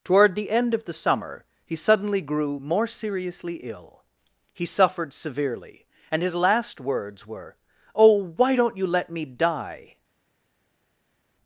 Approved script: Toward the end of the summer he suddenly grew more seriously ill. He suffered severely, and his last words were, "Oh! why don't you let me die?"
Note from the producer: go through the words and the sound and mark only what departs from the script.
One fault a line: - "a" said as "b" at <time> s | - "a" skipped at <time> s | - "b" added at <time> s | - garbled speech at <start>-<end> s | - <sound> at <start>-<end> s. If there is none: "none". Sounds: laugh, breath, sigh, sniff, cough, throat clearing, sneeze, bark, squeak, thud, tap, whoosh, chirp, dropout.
none